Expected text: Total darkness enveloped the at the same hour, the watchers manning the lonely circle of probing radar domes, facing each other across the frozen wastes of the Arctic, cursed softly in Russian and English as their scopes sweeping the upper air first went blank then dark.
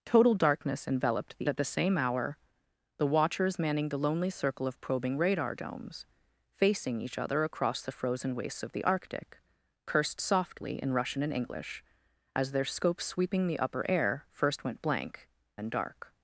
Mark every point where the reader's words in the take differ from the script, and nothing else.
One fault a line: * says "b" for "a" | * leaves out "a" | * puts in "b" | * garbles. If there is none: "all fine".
all fine